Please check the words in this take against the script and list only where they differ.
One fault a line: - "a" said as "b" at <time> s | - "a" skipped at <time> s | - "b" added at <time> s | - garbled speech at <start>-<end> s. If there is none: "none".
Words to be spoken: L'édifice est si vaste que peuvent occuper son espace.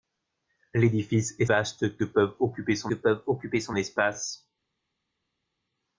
- "si" skipped at 1.4 s
- "peuvent occuper son" added at 2.9 s